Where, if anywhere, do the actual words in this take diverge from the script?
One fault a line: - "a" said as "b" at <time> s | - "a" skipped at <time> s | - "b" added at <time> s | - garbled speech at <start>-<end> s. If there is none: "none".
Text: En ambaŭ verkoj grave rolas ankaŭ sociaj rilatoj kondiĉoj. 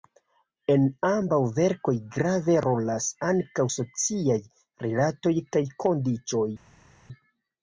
- "kaj" added at 5.5 s